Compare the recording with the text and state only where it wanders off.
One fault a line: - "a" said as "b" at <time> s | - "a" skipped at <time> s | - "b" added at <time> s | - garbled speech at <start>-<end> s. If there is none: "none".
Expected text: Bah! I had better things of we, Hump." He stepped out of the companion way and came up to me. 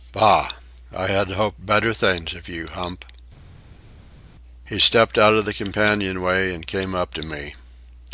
- "hoped" added at 1.3 s
- "we" said as "you" at 2.5 s